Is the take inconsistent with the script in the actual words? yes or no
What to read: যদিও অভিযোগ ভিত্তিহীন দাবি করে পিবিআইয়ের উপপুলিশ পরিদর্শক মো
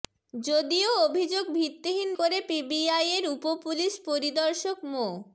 yes